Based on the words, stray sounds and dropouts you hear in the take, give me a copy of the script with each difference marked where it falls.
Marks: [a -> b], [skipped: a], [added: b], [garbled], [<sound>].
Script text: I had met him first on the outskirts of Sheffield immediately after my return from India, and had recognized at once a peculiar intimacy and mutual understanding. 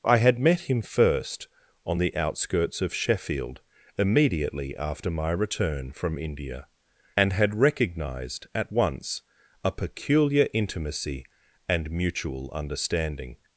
I had met him first on the outskirts of Sheffield immediately after my return from India, and had recognized at once a peculiar intimacy and mutual understanding.